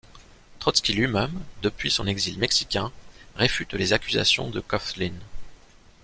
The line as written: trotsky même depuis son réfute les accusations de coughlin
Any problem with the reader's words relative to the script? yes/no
yes